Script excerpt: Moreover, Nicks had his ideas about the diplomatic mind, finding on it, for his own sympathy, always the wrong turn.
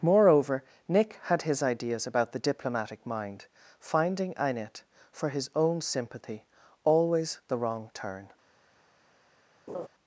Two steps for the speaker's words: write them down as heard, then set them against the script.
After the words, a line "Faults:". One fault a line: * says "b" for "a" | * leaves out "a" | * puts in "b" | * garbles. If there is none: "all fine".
Moreover, Nick had his ideas about the diplomatic mind, finding in it, for his own sympathy, always the wrong turn.
Faults:
* says "Nick" for "Nicks"
* says "in" for "on"